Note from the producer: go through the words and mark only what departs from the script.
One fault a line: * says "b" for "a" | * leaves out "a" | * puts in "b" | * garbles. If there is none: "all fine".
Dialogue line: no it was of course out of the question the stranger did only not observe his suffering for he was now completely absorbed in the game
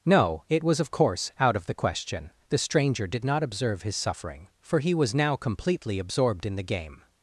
* leaves out "only"